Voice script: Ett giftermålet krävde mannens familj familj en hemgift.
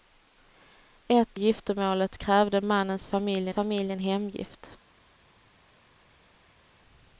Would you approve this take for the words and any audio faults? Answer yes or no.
yes